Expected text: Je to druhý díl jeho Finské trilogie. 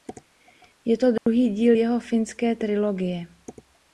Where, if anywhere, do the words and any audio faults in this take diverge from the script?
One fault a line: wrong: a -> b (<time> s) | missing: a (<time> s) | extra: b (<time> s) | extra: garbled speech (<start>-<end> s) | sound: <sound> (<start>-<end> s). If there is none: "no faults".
sound: dropout (1.2-1.3 s)